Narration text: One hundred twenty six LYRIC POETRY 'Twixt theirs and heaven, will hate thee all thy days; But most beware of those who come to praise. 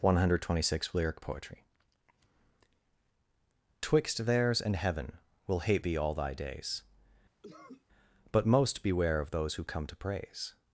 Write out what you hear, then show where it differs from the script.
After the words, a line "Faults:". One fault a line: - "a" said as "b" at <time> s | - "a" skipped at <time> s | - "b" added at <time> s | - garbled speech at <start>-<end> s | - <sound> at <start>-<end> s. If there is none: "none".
One hundred twenty six LYRIC POETRY 'Twixt theirs and heaven, will hate thee all thy days; But most beware of those who come to praise.
Faults:
- cough at 7.4-7.8 s